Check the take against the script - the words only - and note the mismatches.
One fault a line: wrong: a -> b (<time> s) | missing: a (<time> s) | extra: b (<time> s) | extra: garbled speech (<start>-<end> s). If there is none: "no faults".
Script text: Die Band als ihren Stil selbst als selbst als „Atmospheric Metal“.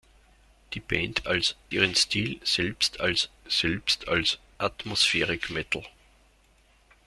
no faults